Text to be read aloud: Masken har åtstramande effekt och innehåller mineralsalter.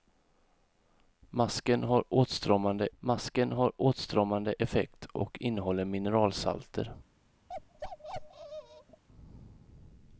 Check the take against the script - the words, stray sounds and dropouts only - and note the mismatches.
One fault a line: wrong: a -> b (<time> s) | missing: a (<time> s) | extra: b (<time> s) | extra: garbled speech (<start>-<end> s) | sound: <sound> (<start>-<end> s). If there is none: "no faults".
extra: masken har åtstramande (3.0 s)
sound: bark (7.5-9.0 s)